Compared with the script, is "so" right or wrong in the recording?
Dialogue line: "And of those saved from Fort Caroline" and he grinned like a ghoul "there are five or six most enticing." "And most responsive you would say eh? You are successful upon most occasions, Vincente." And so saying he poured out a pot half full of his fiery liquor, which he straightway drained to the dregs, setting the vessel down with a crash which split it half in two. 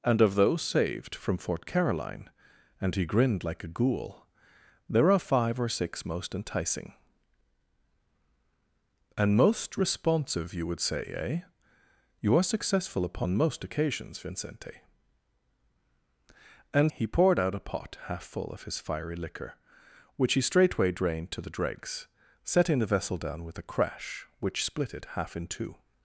wrong